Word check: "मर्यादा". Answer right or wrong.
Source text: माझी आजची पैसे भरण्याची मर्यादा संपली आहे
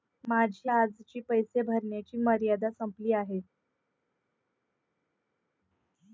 right